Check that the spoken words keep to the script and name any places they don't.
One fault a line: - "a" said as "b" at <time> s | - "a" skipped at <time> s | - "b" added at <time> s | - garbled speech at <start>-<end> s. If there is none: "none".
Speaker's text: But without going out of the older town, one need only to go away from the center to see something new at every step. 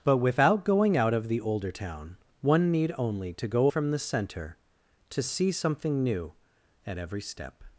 - "away" skipped at 3.7 s